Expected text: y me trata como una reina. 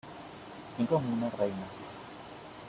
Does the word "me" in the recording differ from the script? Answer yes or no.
yes